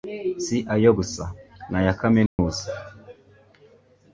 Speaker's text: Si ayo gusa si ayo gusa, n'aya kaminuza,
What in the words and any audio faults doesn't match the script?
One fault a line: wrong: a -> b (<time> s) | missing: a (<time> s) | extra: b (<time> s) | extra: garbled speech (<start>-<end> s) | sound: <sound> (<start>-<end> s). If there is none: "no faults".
missing: si ayo gusa (1.2 s)
sound: dropout (2.3-2.4 s)